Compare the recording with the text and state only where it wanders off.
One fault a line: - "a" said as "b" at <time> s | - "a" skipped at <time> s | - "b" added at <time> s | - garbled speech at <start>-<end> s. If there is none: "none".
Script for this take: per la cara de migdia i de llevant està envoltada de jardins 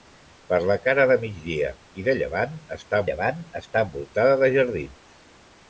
- "llevant està" added at 3.1 s